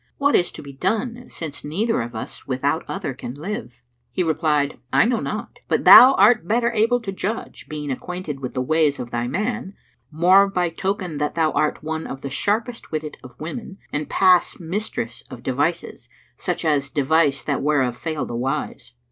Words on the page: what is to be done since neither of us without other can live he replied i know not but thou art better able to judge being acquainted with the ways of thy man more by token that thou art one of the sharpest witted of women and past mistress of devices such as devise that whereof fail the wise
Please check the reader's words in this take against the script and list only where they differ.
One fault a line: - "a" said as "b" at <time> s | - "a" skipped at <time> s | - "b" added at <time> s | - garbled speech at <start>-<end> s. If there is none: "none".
none